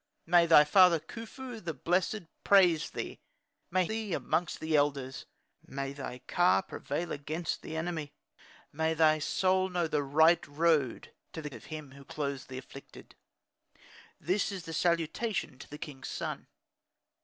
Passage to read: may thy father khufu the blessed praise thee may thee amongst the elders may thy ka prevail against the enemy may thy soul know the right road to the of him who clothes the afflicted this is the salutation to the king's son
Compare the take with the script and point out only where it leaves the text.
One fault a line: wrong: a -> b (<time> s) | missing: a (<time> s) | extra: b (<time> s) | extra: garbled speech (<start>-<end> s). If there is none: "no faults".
no faults